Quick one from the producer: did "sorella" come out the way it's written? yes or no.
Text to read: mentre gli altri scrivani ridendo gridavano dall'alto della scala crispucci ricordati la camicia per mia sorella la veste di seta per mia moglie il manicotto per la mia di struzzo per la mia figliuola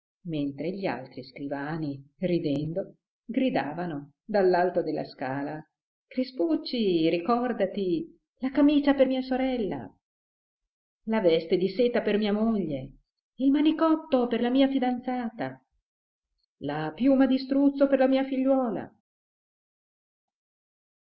yes